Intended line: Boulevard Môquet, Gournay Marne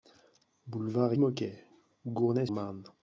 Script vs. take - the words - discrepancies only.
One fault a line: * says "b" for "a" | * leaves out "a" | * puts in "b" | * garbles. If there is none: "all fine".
all fine